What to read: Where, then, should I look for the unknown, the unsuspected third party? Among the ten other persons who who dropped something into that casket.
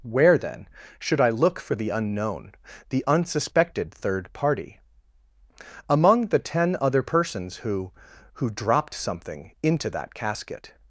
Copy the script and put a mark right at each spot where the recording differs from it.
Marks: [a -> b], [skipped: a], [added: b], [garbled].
Where, then, should I look for the unknown, the unsuspected third party? Among the ten other persons who who dropped something into that casket.